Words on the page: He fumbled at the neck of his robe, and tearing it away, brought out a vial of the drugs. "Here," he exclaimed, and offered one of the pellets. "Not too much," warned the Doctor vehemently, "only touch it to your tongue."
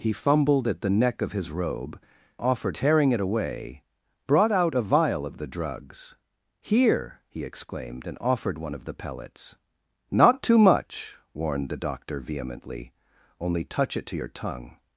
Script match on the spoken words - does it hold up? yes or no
no